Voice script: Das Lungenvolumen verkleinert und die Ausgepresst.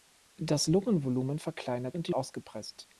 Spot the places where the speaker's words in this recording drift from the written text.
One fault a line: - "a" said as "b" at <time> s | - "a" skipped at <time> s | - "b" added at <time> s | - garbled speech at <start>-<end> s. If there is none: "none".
none